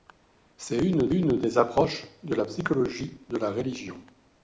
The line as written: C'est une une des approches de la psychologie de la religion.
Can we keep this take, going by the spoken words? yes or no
yes